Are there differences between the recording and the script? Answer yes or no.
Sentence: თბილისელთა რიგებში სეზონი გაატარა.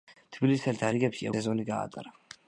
no